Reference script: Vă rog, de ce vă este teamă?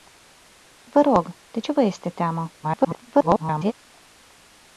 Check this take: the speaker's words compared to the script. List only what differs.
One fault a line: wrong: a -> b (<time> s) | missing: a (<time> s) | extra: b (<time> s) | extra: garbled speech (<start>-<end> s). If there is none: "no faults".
extra: garbled speech (2.6-3.7 s)